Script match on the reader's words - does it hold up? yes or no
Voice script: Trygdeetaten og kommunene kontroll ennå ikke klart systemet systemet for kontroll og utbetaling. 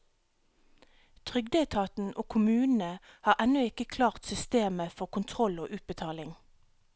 no